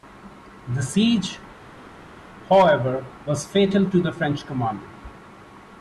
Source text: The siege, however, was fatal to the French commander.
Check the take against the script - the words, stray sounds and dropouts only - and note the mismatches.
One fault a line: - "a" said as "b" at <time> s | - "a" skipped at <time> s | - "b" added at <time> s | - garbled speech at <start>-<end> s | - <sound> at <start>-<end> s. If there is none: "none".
none